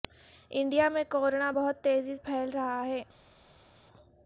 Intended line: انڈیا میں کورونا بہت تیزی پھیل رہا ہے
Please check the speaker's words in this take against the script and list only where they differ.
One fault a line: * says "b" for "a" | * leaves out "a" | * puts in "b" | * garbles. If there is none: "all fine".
all fine